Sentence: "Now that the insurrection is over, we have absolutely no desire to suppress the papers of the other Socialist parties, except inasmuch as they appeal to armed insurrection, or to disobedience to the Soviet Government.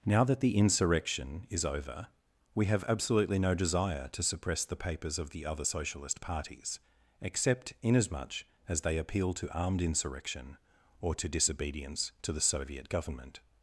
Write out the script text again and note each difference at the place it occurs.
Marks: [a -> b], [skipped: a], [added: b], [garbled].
"Now that the insurrection is over, we have absolutely no desire to suppress the papers of the other Socialist parties, except inasmuch as they appeal to armed insurrection, or to disobedience to the Soviet Government.